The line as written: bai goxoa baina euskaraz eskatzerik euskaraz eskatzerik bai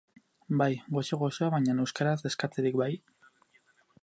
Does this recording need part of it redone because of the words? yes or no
yes